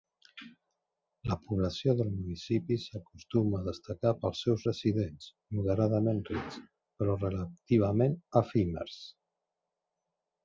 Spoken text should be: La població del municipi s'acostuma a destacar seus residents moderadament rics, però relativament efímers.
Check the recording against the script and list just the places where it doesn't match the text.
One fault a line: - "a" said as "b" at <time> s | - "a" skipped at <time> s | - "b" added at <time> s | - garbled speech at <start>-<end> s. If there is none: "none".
- "pels" added at 4.2 s